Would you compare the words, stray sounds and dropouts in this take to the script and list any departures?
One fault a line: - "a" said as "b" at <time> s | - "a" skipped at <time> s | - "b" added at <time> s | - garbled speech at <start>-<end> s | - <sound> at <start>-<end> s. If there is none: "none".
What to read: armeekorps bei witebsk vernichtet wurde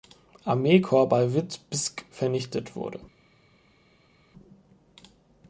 none